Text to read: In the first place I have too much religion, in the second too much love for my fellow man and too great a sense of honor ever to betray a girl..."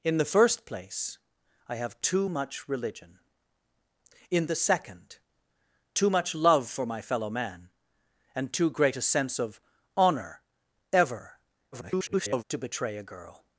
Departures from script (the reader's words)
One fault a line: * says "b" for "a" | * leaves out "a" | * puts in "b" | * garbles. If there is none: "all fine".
* garbles